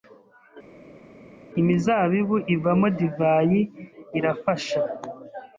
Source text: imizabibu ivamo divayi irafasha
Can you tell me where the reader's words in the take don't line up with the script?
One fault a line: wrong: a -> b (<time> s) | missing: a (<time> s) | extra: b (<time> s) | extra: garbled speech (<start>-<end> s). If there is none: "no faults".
no faults